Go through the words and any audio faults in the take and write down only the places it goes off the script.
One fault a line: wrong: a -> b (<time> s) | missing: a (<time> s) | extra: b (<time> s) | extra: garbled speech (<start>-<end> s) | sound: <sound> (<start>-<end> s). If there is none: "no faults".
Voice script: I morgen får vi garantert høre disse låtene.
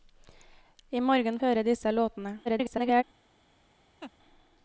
missing: får vi garantert (1.4 s)
extra: garbled speech (2.4-3.0 s)
sound: laugh (4.0-4.1 s)